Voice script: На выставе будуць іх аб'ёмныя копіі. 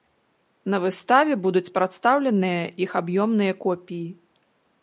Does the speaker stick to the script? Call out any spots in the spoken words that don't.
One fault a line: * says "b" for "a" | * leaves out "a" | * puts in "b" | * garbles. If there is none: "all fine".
* puts in "прадстаўленыя"